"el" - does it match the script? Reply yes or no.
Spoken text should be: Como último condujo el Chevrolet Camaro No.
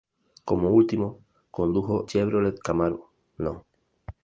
no